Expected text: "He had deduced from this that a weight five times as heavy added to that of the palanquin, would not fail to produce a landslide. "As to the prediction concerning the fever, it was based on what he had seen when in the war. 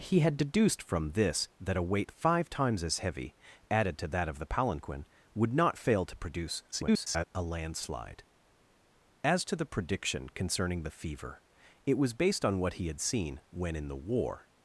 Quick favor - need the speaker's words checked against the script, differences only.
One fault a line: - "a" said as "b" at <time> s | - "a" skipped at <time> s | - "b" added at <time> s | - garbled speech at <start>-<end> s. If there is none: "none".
- garbled speech at 6.7-7.3 s